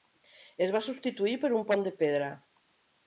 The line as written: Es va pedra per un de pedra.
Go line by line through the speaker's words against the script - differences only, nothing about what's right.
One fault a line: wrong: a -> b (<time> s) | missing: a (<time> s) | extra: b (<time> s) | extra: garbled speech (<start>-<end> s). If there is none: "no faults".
wrong: pedra -> substituir (0.9 s)
extra: pont (1.7 s)